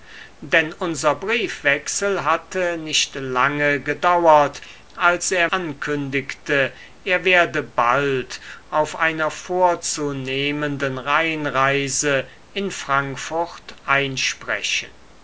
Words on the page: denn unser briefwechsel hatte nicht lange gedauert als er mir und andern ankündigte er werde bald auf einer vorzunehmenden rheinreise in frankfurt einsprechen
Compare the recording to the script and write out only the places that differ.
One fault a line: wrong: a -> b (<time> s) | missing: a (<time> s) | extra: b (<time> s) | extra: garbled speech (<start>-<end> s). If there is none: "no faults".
missing: mir und andern (5.5 s)